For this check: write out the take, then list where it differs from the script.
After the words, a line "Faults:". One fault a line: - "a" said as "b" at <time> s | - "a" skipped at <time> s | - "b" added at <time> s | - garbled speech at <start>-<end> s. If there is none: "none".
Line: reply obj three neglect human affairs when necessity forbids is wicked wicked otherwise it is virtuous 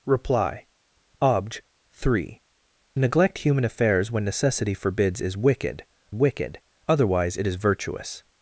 reply obj three neglect human affairs when necessity forbids is wicked wicked otherwise it is virtuous
Faults:
none